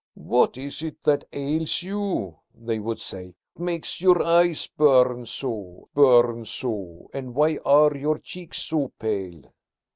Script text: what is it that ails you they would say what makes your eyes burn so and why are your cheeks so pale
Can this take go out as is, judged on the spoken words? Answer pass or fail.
fail